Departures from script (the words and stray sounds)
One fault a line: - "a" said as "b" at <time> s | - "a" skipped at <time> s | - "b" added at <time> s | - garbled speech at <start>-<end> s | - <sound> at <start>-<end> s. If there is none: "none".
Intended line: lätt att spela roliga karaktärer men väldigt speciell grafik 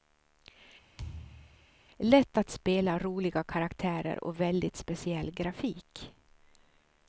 - thud at 1.0-1.7 s
- "men" said as "och" at 4.2 s